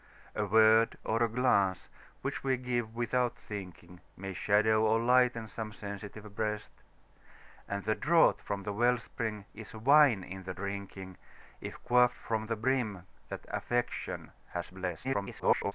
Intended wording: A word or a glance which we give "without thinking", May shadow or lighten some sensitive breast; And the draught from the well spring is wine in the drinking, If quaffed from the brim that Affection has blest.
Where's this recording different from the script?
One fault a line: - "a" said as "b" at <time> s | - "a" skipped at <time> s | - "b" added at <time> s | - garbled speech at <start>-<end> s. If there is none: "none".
- garbled speech at 15.0-15.7 s